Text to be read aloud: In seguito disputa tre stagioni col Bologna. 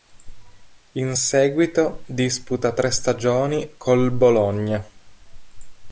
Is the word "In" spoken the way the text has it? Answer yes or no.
yes